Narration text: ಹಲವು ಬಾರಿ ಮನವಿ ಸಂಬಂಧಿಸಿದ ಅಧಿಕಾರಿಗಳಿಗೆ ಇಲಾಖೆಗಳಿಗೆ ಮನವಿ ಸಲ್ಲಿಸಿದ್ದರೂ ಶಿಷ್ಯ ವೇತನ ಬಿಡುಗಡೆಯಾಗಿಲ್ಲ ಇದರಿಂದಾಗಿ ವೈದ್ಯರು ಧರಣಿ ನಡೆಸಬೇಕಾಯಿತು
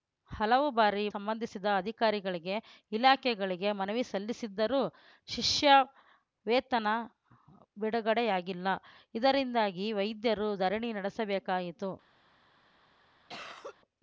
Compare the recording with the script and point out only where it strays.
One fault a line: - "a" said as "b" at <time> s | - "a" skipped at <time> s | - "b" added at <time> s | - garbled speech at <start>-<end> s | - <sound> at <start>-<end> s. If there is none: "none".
- "ಮನವಿ" skipped at 1.0 s
- cough at 13.3-13.8 s